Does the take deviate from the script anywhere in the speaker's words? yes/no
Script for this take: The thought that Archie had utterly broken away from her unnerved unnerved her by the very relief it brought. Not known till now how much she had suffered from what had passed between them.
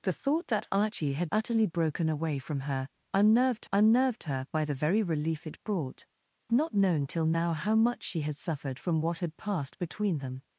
no